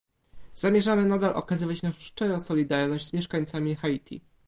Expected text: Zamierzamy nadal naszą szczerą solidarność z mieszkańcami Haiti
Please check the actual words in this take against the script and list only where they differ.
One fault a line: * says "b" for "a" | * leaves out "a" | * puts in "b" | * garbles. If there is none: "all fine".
* puts in "okazywać"